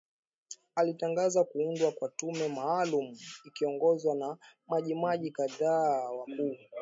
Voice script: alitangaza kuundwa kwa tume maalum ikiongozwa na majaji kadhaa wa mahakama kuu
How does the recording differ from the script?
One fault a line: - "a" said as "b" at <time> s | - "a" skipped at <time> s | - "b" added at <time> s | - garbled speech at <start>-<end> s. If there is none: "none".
- "mahakama" skipped at 6.3 s